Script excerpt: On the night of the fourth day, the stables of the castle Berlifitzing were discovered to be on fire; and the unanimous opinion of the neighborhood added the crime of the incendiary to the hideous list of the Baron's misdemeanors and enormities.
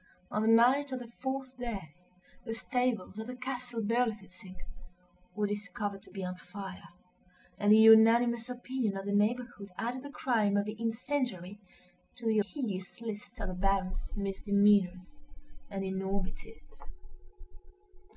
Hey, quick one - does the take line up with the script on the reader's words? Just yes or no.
yes